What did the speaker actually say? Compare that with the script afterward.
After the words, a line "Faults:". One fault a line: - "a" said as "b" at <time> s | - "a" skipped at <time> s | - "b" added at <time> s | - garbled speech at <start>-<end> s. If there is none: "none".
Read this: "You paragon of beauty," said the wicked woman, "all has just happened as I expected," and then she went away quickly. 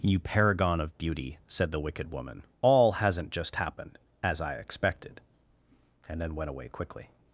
"You paragon of beauty," said the wicked woman, "all hasn't just happened as I expected," and then went away quickly.
Faults:
- "has" said as "hasn't" at 2.9 s
- "she" skipped at 6.4 s